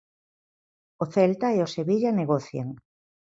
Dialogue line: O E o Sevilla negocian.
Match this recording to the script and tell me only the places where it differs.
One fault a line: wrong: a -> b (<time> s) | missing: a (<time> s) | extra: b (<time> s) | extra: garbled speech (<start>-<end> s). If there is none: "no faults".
extra: Celta (1.1 s)